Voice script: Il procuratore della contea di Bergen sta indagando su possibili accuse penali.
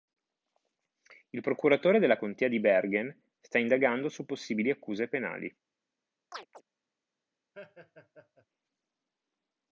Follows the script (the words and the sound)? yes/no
no